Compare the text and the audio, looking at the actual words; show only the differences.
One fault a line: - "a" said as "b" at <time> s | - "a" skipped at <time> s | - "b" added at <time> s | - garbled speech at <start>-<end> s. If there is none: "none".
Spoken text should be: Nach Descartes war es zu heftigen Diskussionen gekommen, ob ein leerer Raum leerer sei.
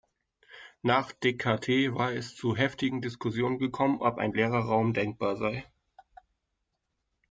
- "leerer" said as "denkbar" at 4.9 s